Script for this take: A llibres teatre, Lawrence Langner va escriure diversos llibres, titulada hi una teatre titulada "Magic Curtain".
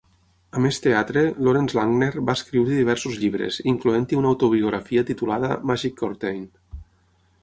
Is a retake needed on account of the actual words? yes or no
yes